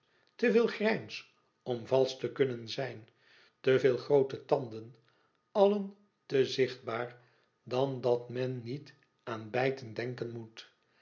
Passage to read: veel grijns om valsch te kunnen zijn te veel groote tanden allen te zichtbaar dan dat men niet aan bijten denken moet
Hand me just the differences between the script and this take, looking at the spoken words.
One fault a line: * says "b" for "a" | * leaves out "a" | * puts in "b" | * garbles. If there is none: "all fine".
all fine